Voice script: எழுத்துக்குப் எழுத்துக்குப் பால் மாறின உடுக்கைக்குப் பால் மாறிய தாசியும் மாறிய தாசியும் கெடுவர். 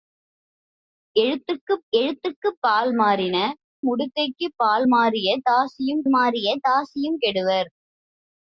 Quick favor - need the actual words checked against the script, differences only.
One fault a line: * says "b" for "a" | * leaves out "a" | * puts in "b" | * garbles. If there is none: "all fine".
all fine